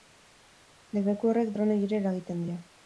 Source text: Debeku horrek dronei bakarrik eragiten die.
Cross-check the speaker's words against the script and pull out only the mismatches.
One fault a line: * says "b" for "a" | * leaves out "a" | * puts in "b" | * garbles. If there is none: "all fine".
* says "ere" for "bakarrik"